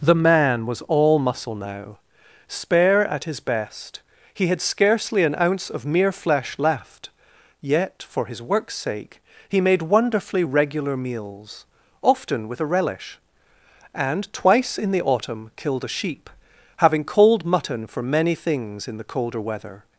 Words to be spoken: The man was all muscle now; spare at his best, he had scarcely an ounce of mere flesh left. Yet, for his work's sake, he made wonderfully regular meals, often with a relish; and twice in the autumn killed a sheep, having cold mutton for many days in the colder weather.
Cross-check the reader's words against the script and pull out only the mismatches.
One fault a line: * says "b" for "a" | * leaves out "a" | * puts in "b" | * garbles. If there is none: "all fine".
* says "things" for "days"